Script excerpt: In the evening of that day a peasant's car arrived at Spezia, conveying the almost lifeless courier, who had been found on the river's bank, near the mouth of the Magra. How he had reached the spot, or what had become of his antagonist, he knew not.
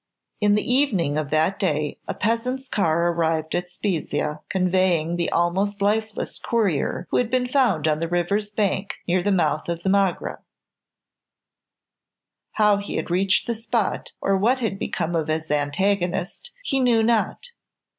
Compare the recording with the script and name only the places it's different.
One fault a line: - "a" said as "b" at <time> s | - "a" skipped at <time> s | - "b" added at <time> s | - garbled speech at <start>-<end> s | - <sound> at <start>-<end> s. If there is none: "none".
none